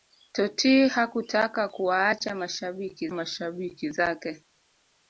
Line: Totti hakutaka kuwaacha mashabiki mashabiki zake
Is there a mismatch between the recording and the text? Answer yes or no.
no